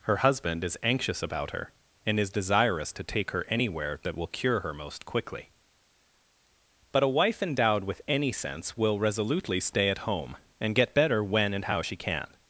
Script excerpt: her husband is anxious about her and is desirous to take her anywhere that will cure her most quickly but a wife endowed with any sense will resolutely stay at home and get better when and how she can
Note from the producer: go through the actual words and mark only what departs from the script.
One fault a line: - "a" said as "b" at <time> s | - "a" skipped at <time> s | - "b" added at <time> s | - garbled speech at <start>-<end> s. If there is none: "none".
none